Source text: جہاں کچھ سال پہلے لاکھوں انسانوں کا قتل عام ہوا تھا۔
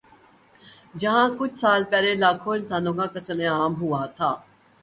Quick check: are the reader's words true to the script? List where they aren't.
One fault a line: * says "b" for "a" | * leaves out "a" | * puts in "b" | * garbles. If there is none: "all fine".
all fine